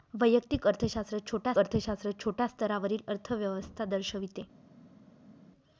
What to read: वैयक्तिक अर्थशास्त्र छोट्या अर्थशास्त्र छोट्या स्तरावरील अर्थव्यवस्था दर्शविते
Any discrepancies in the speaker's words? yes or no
no